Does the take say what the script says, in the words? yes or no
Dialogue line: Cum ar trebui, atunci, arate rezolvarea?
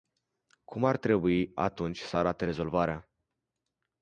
no